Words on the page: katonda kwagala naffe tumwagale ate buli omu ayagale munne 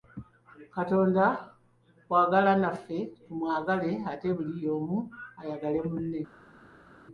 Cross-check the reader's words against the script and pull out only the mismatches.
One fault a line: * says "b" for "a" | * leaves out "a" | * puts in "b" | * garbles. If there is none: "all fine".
all fine